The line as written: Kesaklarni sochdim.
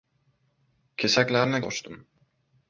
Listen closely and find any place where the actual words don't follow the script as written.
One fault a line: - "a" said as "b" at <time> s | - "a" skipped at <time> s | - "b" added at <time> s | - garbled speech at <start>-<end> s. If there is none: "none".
none